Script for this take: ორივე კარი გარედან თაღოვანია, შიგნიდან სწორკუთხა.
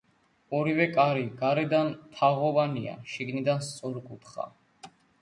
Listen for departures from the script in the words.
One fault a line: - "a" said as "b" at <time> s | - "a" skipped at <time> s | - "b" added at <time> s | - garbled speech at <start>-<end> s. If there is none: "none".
none